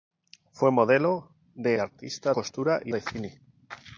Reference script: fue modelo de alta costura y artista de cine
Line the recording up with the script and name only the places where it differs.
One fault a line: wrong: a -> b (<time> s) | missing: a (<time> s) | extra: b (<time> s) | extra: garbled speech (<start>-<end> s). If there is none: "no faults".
wrong: alta -> artista (1.8 s)
missing: artista (2.9 s)